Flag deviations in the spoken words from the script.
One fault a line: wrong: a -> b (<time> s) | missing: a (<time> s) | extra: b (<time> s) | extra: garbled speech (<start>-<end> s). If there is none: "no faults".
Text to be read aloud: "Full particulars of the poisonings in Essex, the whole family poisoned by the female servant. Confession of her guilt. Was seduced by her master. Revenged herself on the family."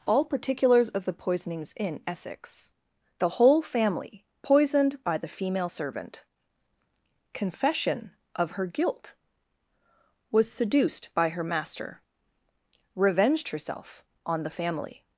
wrong: Full -> All (0.1 s)